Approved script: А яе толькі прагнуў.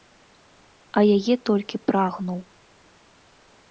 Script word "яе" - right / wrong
right